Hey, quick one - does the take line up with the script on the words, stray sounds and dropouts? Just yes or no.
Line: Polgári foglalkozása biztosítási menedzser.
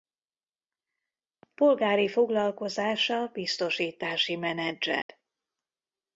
no